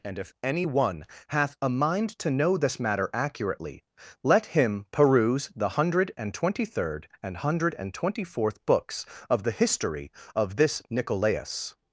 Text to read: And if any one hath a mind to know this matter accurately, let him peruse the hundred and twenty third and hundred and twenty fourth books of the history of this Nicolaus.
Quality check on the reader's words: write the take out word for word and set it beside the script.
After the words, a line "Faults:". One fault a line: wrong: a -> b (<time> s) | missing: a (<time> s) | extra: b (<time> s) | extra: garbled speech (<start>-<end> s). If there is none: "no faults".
And if any one hath a mind to know this matter accurately, let him peruse the hundred and twenty third and hundred and twenty fourth books of the history of this Nicolaus.
Faults:
no faults